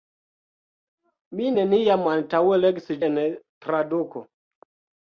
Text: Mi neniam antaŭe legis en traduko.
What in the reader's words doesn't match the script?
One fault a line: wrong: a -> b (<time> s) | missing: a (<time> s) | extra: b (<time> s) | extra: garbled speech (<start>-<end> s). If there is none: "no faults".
no faults